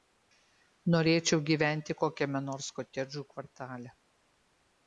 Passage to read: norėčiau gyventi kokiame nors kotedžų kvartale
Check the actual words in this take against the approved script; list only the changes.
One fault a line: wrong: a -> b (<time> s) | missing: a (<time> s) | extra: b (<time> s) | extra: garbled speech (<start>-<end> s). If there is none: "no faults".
no faults